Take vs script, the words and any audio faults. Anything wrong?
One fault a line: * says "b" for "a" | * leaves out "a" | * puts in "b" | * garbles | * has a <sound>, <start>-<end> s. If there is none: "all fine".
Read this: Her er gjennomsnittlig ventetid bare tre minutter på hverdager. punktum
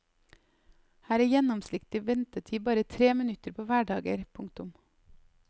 all fine